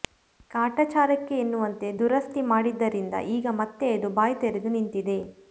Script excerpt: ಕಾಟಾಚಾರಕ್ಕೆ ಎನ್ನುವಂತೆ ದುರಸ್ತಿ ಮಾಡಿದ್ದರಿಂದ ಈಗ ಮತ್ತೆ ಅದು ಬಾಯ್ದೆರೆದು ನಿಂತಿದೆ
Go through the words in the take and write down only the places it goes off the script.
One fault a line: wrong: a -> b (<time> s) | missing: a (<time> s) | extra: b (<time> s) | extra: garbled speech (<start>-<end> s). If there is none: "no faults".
no faults